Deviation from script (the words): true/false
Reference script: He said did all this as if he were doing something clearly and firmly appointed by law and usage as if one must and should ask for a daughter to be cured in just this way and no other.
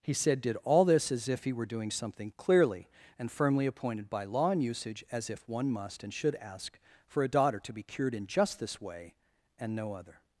false